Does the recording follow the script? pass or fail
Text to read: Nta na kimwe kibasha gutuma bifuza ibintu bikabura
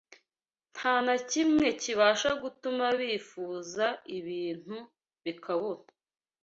pass